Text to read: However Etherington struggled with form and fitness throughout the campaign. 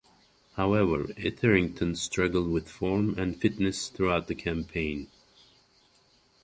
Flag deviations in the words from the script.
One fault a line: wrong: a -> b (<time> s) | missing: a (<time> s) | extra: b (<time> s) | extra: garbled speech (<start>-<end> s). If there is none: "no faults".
no faults